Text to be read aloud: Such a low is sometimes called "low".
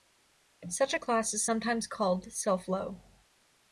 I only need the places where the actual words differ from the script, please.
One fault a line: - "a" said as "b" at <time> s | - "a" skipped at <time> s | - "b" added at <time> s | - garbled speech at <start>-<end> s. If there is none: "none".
- "low" said as "class" at 1.0 s
- "self" added at 2.3 s